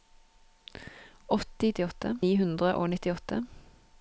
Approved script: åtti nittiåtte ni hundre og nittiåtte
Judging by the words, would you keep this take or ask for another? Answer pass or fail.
pass